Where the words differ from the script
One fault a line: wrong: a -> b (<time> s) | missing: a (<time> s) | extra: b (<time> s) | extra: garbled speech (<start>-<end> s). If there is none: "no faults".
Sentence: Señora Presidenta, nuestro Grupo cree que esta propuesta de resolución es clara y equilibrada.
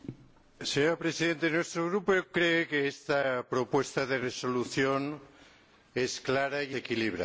no faults